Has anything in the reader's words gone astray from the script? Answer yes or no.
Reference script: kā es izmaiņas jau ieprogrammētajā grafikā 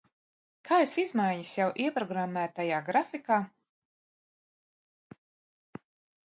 no